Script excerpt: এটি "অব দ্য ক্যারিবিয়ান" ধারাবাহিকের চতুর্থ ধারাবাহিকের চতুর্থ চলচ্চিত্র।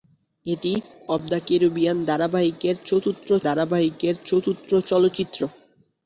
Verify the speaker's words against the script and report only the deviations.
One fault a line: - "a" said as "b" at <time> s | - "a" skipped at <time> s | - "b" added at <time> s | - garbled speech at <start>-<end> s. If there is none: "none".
none